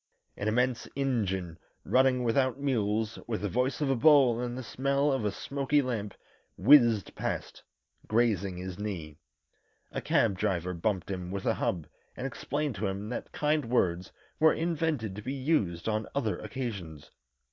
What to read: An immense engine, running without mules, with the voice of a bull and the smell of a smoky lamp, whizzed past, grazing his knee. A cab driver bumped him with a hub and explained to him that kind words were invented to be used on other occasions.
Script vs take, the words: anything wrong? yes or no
no